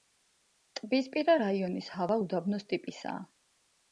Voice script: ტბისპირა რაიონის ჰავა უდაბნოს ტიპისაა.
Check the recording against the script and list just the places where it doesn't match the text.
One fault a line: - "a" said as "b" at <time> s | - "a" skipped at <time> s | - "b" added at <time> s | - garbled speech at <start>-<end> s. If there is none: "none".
none